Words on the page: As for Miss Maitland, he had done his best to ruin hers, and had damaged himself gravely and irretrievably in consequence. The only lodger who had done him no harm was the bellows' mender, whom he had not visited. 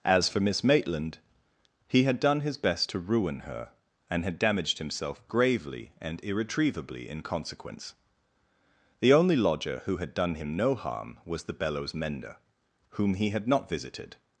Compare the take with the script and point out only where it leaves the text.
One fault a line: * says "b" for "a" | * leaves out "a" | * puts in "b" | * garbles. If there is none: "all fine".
* says "her" for "hers"